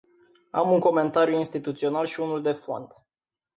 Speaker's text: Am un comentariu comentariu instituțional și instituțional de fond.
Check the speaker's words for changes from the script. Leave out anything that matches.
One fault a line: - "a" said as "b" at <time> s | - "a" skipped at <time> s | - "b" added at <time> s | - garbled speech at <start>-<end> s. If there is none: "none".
- "comentariu" skipped at 1.4 s
- "instituțional" said as "unul" at 2.2 s